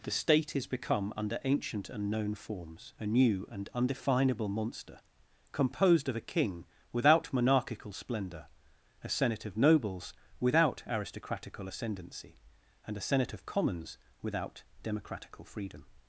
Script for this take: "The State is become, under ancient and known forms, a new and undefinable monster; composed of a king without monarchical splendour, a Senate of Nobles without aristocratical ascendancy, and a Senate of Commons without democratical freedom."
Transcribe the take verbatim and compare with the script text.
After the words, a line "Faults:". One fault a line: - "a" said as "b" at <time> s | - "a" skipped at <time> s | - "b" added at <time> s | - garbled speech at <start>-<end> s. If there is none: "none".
"The State is become, under ancient and known forms, a new and undefinable monster; composed of a king without monarchical splendour, a Senate of Nobles without aristocratical ascendancy, and a Senate of Commons without democratical freedom."
Faults:
none